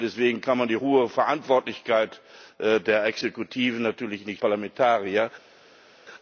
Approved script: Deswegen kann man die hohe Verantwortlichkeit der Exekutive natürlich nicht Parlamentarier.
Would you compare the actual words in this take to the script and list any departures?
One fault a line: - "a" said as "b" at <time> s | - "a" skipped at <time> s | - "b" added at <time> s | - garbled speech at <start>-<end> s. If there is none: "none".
none